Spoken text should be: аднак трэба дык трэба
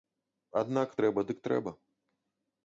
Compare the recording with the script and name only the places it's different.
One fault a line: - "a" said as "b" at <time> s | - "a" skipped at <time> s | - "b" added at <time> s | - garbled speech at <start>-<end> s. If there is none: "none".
none